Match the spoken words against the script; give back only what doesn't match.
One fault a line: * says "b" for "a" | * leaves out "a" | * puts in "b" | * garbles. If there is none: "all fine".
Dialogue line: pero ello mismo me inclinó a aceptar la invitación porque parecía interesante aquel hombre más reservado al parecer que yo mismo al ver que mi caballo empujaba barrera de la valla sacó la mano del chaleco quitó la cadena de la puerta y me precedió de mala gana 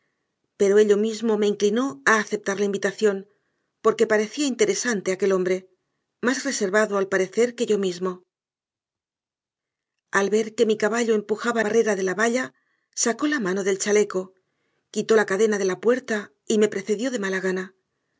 all fine